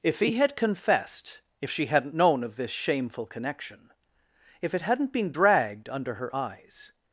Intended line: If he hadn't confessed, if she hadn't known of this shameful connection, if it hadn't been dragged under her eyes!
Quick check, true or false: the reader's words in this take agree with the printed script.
false